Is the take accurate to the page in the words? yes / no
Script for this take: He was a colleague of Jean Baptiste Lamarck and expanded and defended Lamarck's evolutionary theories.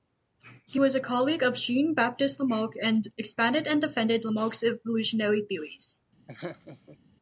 yes